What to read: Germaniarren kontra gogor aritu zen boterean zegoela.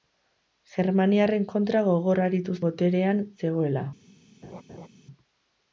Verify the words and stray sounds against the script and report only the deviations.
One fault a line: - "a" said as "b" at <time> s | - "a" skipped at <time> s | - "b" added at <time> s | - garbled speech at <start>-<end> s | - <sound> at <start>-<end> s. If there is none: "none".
- "zen" skipped at 2.6 s
- laugh at 4.4-4.9 s